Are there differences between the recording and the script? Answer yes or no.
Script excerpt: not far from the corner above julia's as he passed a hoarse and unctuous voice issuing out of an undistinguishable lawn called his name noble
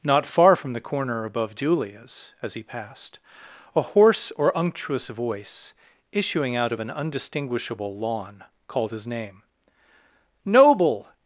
yes